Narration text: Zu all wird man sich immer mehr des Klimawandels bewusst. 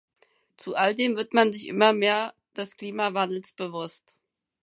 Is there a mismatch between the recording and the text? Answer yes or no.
yes